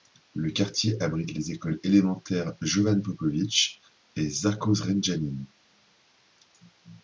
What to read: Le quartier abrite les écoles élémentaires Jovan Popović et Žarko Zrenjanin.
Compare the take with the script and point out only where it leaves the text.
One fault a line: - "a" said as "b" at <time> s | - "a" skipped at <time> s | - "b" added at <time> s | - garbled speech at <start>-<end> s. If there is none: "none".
none